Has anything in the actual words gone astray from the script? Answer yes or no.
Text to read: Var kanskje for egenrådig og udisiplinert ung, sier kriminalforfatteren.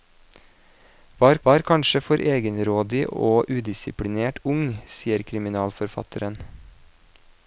yes